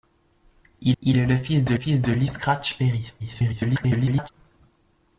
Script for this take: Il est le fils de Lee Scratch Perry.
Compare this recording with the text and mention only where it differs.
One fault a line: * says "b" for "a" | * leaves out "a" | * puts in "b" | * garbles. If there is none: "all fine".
* puts in "il"
* puts in "fils de"
* garbles